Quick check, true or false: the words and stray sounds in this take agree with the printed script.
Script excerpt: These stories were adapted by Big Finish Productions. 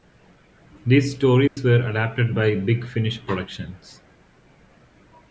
false